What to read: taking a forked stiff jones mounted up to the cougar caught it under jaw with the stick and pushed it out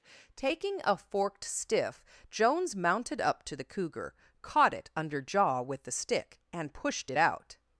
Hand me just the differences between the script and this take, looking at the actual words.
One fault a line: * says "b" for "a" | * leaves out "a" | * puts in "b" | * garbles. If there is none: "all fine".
all fine